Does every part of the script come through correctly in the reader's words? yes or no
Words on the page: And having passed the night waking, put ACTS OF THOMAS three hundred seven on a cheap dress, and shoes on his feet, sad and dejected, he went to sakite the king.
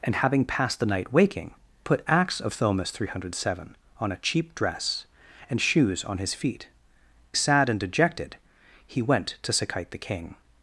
yes